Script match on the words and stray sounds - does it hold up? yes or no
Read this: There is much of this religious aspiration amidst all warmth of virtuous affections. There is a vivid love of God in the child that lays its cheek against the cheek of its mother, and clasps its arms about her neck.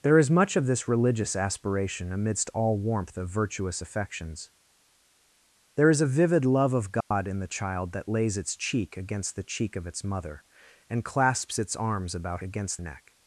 no